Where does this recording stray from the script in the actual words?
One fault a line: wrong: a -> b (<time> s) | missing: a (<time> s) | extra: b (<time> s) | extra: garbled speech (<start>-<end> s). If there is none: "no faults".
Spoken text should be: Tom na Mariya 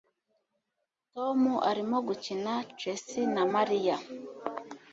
extra: arimo gukina chess (1.7 s)